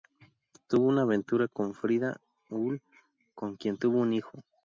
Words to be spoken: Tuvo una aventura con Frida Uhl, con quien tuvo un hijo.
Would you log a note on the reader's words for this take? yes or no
no